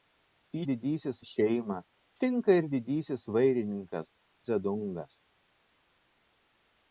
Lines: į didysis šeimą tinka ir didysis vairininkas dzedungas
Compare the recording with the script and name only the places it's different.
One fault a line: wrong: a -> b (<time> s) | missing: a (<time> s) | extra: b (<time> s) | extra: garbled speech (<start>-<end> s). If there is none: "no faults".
no faults